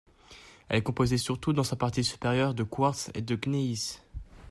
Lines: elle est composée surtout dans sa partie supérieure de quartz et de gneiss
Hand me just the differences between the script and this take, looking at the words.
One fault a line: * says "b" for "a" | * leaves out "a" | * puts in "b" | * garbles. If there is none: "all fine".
all fine